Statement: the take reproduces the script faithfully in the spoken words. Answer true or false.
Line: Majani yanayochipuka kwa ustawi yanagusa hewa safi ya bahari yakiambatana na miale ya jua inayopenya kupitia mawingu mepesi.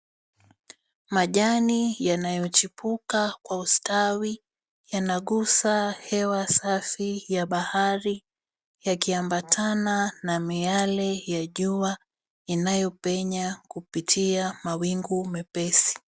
true